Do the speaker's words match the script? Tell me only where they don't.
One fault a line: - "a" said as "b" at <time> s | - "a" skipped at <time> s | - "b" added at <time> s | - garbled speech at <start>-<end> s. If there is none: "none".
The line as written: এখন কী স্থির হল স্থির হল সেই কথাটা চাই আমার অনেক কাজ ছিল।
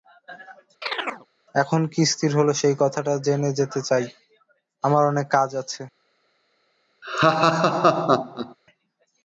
- "স্থির হল সেই কথাটা" said as "সেই কথাটা জেনে যেতে" at 2.5 s
- "ছিল" said as "আছে" at 5.6 s